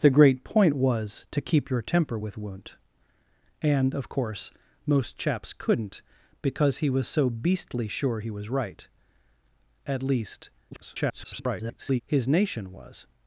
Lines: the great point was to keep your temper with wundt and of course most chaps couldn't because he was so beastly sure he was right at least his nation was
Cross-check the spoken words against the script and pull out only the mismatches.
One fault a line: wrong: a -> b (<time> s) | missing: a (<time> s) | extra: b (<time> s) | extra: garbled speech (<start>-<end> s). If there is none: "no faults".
extra: garbled speech (10.7-12.0 s)